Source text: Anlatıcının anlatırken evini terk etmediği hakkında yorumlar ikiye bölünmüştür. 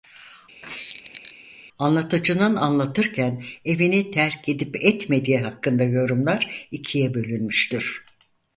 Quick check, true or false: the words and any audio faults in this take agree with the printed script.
false